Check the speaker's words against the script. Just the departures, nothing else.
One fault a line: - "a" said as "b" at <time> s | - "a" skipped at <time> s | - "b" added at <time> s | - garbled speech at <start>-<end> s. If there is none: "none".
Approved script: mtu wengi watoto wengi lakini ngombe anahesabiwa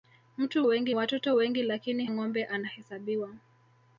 none